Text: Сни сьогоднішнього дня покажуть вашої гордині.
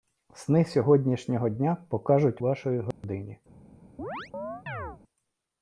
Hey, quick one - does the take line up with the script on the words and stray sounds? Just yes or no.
no